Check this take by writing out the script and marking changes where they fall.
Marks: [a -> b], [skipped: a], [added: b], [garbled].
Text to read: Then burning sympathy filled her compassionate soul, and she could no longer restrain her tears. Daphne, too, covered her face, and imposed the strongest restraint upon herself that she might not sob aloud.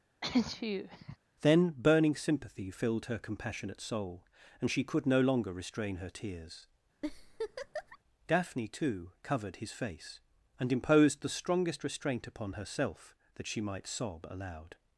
Then burning sympathy filled her compassionate soul, and she could no longer restrain her tears. Daphne, too, covered [her -> his] face, and imposed the strongest restraint upon herself that she might [skipped: not] sob aloud.